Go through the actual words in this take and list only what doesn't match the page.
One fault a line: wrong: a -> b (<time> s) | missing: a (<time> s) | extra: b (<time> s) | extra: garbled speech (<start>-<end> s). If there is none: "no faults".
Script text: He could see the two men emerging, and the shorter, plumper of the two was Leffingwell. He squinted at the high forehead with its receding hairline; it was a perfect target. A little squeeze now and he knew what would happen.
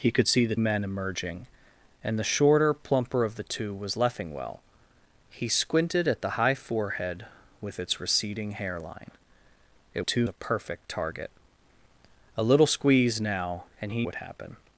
missing: two (0.6 s)
wrong: was -> two (10.0 s)
missing: knew what (14.1 s)